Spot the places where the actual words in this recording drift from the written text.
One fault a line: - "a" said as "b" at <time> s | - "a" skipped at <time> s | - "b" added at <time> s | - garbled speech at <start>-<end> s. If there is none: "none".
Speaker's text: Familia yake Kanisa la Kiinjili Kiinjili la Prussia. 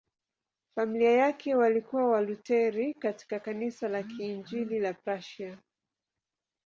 - "walikuwa Walutheri katika" added at 1.6 s
- "Kiinjili" skipped at 4.8 s